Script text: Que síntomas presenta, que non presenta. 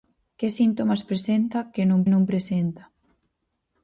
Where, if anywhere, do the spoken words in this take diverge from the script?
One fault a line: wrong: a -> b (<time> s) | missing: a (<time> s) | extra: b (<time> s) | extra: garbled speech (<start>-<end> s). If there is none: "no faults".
extra: non (2.1 s)